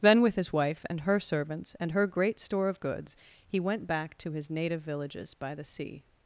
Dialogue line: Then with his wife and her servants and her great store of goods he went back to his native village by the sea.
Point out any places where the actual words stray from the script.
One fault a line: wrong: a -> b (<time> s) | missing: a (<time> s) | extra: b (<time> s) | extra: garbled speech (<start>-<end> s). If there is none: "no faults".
wrong: village -> villages (4.8 s)